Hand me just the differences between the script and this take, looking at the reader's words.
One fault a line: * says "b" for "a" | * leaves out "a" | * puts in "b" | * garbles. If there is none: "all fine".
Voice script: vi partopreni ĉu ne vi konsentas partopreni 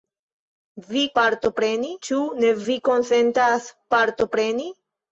all fine